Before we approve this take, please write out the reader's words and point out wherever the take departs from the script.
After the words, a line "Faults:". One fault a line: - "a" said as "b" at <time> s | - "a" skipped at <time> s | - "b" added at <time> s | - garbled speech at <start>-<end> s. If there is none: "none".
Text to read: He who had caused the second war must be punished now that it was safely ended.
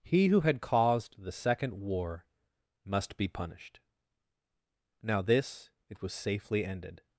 He who had caused the second war must be punished now this it was safely ended.
Faults:
- "that" said as "this" at 5.2 s